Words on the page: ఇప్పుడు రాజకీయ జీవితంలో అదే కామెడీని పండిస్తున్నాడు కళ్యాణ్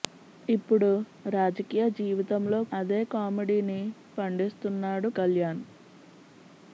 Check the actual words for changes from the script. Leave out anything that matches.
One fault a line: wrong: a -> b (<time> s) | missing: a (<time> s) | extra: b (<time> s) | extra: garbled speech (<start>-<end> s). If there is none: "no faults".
no faults